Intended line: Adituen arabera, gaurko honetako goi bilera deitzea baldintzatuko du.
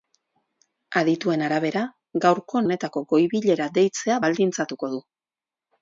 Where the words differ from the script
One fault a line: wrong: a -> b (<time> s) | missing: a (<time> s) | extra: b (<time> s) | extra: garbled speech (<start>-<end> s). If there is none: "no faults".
no faults